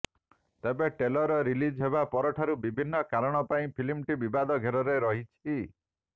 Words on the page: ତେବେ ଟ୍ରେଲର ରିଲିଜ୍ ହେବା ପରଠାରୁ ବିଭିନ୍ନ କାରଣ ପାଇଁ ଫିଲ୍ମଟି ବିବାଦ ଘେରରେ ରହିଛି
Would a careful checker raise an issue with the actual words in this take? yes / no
no